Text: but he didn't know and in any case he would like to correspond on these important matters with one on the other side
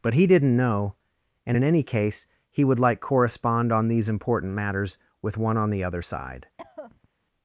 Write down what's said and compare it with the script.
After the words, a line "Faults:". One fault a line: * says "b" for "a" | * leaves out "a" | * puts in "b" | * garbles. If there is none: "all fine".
but he didn't know and in any case he would like correspond on these important matters with one on the other side
Faults:
* leaves out "to"